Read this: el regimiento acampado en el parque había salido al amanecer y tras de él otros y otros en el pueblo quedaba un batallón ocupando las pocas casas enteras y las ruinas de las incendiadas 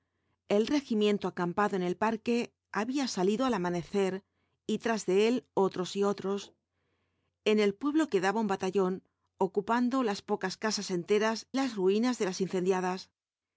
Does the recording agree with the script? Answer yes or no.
no